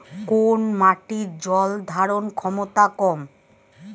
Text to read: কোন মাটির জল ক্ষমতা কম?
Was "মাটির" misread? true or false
false